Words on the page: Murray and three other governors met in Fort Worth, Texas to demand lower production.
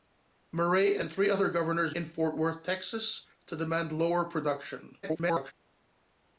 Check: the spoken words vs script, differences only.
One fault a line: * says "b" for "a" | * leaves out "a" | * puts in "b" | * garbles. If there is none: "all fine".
* leaves out "met"
* garbles